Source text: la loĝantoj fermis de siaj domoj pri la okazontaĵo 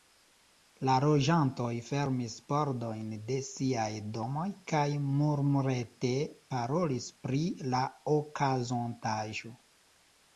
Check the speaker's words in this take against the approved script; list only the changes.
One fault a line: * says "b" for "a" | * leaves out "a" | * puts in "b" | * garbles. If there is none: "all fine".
* puts in "pordojn"
* puts in "kaj murmurete parolis"